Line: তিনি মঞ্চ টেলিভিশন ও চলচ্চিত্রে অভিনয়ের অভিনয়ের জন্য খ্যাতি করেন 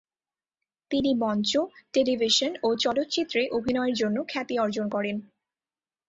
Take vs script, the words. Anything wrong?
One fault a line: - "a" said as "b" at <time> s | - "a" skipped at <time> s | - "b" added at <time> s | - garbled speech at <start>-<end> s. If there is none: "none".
- "অভিনয়ের" skipped at 4.0 s
- "অর্জন" added at 4.6 s